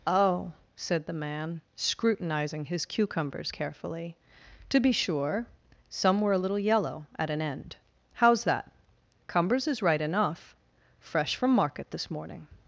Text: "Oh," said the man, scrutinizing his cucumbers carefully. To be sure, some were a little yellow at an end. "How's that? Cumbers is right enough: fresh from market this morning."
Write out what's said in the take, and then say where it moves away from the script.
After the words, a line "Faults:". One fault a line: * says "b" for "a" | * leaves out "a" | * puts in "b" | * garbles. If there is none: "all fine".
"Oh," said the man, scrutinizing his cucumbers carefully. To be sure, some were a little yellow at an end. "How's that? Cumbers is right enough: fresh from market this morning."
Faults:
all fine